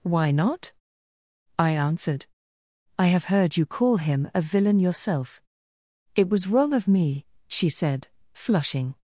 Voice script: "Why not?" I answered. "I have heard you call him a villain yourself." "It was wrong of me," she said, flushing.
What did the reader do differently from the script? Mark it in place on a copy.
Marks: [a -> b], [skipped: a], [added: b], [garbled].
"Why not?" I answered. "I have heard you call him a villain yourself." "It was wrong of me," she said, flushing.